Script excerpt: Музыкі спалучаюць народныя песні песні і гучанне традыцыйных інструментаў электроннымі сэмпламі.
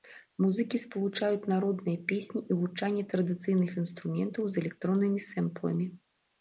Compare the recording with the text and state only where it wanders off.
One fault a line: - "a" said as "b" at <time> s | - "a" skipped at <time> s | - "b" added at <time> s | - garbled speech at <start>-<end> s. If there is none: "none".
- "песні" skipped at 2.4 s
- "з" added at 4.5 s